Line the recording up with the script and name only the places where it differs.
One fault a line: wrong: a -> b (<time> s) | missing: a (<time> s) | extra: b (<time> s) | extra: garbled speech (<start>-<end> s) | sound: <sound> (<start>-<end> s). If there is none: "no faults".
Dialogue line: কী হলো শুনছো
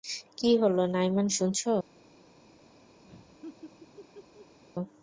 extra: নাইমান (0.9 s)
sound: laugh (3.0-4.6 s)